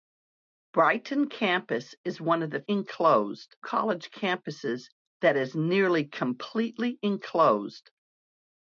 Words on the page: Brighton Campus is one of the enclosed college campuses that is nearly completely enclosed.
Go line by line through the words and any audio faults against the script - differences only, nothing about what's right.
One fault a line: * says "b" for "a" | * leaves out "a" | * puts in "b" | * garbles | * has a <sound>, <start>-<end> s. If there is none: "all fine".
all fine